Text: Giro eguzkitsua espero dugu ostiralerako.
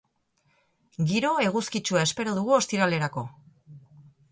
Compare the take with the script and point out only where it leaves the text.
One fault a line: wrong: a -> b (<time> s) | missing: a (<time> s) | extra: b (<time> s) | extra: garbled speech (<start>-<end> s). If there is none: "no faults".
no faults